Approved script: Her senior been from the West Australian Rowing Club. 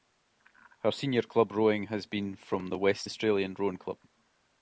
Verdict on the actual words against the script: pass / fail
fail